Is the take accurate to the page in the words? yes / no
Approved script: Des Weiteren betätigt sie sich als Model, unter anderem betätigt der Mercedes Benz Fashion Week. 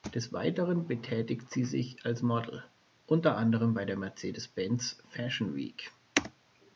no